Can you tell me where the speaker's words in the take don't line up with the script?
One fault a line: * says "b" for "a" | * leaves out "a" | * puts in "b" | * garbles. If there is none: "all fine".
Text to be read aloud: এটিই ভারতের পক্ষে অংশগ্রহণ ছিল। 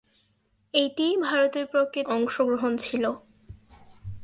all fine